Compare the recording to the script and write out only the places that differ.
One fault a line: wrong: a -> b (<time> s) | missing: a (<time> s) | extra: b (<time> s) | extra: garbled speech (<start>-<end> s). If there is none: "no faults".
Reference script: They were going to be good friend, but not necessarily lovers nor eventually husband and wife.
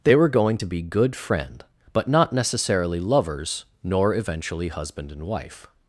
no faults